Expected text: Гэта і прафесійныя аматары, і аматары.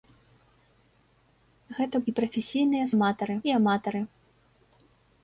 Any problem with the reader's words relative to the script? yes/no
no